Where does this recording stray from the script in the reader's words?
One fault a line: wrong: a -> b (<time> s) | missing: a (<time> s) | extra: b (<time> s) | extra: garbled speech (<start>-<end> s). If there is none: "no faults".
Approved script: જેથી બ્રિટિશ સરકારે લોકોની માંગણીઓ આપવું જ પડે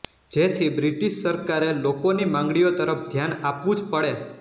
extra: તરફ ધ્યાન (2.8 s)